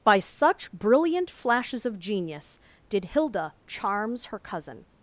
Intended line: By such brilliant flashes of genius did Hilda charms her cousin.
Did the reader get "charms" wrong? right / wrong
right